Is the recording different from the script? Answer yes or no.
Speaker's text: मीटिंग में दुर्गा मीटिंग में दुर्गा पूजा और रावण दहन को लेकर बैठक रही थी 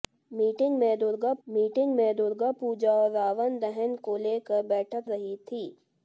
no